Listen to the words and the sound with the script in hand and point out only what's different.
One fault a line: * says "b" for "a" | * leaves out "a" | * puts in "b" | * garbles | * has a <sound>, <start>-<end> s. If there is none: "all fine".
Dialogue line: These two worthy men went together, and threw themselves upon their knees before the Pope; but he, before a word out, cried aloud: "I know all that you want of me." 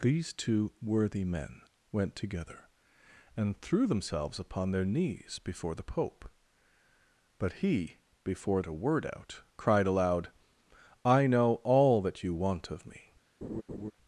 * has a laugh, 13.4-13.9 s